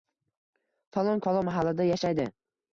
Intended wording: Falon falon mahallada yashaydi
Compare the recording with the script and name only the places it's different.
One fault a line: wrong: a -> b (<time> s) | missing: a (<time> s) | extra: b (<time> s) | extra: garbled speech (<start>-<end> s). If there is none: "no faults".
no faults